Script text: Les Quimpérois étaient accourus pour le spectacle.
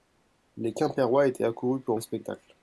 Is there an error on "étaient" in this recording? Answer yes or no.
no